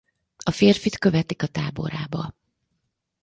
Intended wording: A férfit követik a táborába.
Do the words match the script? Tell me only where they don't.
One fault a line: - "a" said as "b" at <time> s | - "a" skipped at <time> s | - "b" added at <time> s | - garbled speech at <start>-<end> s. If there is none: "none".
none